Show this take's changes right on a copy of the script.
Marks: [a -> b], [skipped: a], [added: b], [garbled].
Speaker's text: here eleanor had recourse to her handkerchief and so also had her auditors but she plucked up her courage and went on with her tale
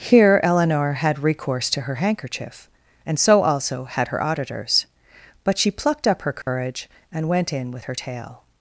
here eleanor had recourse to her handkerchief and so also had her auditors but she plucked up her courage and went [on -> in] with her tale